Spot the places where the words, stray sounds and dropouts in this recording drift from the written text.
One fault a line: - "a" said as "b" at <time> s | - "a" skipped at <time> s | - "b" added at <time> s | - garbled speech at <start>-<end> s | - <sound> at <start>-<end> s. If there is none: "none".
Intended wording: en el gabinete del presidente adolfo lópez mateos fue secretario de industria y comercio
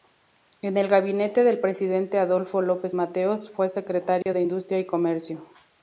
- dropout at 4.2-4.3 s